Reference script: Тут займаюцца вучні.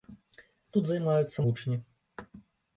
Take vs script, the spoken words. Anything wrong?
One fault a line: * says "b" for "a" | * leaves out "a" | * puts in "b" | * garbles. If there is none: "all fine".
all fine